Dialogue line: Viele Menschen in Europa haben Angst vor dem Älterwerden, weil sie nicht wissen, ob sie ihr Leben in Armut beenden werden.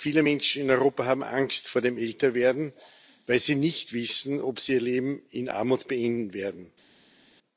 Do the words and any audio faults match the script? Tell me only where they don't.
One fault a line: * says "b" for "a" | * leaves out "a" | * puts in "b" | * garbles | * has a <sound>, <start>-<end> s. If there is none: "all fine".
all fine